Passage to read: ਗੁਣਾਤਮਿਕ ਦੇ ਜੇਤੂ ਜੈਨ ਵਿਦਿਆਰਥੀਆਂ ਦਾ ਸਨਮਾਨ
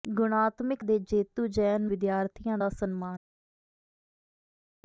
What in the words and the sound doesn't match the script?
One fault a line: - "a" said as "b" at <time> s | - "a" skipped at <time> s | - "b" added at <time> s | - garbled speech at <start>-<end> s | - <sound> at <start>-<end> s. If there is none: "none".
none